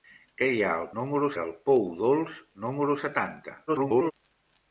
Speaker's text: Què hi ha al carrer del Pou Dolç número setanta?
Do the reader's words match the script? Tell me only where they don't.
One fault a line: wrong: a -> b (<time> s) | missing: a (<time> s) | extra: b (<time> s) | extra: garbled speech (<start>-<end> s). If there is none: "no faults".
wrong: carrer -> número (1.0 s)
extra: garbled speech (3.7-4.1 s)